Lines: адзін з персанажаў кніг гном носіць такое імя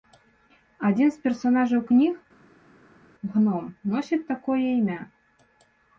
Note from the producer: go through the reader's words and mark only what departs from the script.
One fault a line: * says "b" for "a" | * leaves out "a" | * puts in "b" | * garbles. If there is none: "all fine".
all fine